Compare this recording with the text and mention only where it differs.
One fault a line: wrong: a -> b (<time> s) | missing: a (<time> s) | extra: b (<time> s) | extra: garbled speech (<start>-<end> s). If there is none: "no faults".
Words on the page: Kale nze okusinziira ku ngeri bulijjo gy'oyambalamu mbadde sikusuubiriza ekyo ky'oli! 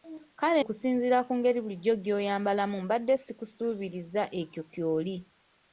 missing: nze (0.6 s)